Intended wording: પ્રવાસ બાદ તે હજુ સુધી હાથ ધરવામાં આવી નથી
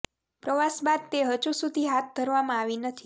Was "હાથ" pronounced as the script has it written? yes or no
yes